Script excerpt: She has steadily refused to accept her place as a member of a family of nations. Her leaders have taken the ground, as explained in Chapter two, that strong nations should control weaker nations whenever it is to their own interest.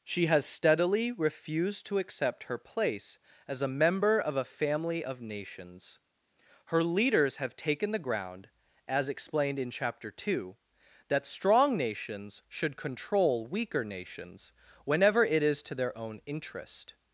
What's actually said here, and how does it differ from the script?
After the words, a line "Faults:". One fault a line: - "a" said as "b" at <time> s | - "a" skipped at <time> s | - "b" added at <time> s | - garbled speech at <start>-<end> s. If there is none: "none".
She has steadily refused to accept her place as a member of a family of nations. Her leaders have taken the ground, as explained in Chapter two, that strong nations should control weaker nations whenever it is to their own interest.
Faults:
none